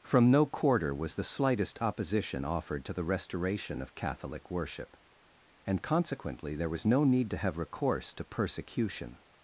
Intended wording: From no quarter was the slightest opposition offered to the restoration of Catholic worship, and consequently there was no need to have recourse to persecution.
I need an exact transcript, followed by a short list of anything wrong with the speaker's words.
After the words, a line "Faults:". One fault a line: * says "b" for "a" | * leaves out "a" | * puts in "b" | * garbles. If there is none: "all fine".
From no quarter was the slightest opposition offered to the restoration of Catholic worship, and consequently there was no need to have recourse to persecution.
Faults:
all fine